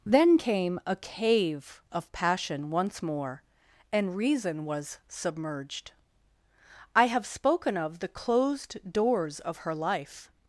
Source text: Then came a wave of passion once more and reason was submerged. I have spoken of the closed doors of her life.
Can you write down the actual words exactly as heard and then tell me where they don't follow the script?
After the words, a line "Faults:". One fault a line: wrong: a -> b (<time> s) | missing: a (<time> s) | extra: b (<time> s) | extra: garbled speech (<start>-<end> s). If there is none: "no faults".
Then came a cave of passion once more and reason was submerged. I have spoken of the closed doors of her life.
Faults:
wrong: wave -> cave (1.0 s)